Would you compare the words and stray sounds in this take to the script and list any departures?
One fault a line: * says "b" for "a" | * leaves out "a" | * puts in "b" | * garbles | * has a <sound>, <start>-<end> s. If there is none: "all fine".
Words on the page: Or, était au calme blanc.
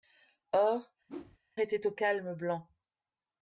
* has a whoosh, 1.1-1.4 s